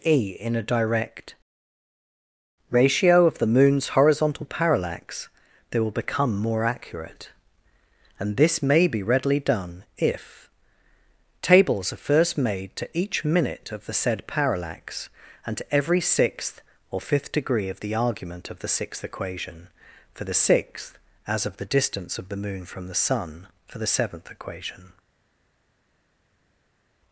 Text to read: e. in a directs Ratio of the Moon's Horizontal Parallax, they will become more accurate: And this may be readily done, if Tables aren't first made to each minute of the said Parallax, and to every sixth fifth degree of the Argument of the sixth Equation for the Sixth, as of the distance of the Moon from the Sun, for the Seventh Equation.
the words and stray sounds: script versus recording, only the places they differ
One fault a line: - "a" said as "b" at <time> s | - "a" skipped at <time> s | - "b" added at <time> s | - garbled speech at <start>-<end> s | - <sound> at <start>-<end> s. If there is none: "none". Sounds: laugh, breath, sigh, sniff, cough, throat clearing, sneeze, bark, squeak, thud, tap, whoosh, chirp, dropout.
- "directs" said as "direct" at 0.6 s
- "aren't" said as "are" at 11.9 s
- "or" added at 16.9 s